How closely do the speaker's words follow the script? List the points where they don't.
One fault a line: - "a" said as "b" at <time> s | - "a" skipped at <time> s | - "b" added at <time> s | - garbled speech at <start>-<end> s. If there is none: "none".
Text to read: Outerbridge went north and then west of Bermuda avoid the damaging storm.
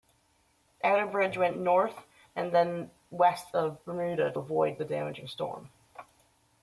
none